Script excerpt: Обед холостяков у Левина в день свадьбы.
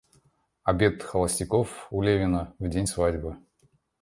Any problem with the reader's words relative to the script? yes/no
no